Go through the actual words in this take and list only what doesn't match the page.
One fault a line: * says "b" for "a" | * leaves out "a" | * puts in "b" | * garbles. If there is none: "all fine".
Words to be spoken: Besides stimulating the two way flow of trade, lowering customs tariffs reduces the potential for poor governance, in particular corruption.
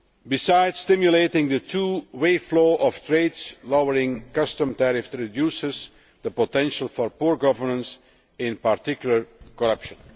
all fine